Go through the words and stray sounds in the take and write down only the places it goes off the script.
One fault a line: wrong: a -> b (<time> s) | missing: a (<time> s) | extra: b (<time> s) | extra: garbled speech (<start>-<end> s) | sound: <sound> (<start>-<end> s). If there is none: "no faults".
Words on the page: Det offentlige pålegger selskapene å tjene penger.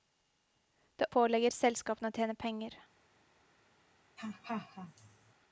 missing: offentlige (1.1 s)
sound: laugh (4.2-5.3 s)